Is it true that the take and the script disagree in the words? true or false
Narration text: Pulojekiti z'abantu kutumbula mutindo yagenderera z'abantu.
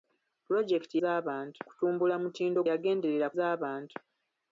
false